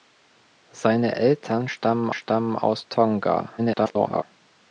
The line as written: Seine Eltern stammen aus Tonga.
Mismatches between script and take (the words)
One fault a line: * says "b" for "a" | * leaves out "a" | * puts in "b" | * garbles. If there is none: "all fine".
* puts in "stammen"
* garbles